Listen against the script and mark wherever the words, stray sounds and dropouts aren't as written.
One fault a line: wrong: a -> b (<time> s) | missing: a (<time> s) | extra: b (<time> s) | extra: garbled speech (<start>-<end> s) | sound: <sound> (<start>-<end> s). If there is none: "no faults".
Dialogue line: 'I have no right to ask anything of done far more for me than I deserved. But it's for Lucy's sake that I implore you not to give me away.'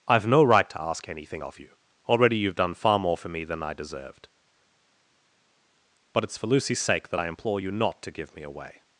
extra: you Already you've (1.6 s)